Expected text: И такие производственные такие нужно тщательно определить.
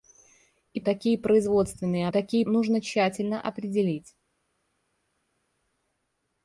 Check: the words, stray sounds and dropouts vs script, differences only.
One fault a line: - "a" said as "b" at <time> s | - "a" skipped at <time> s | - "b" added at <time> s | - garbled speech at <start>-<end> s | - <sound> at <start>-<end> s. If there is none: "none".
none